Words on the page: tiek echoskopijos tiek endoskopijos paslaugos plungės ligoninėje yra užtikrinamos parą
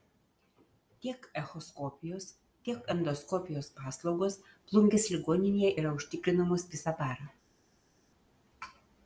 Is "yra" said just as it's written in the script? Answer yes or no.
yes